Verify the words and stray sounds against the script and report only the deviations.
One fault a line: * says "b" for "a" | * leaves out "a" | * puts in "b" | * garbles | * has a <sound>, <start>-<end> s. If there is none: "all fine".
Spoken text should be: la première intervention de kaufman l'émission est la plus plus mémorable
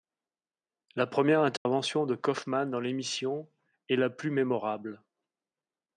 * has a dropout, 1.6-1.7 s
* puts in "dans"
* leaves out "plus"